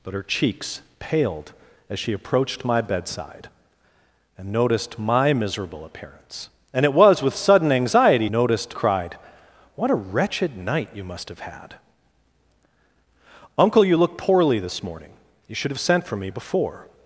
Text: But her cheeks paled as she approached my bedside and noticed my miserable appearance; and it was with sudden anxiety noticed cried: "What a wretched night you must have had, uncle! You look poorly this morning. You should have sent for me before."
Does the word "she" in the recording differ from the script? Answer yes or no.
no